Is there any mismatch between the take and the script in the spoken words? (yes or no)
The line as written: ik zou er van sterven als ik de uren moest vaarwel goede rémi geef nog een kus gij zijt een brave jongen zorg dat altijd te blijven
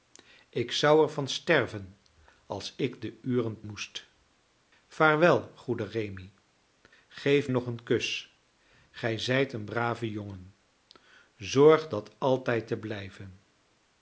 no